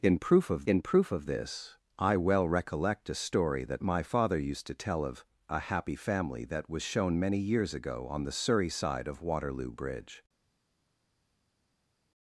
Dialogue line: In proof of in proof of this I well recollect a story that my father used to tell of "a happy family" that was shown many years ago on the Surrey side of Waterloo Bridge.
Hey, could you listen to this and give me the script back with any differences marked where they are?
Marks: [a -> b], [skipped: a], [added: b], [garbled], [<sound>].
In proof of in proof of this I well recollect a story that my father used to tell of "a happy family" that was shown many years ago on the Surrey side of Waterloo Bridge.